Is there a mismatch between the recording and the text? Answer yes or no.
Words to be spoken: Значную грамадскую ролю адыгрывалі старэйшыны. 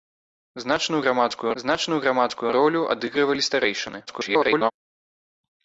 yes